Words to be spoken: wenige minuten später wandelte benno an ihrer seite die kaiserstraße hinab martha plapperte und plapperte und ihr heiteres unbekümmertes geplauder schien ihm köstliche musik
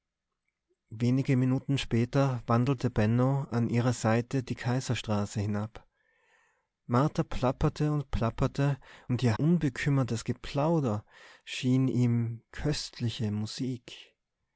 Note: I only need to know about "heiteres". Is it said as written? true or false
false